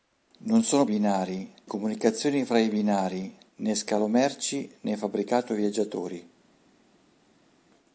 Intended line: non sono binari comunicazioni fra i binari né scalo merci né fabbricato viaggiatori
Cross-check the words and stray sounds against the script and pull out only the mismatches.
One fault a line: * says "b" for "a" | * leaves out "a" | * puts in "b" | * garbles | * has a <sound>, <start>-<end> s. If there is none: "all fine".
all fine